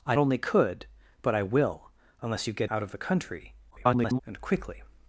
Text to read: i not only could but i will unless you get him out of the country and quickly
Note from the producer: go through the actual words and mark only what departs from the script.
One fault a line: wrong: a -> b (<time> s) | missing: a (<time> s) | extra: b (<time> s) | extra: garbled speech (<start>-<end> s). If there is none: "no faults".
missing: not (0.1 s)
missing: him (2.7 s)
extra: garbled speech (3.7-4.2 s)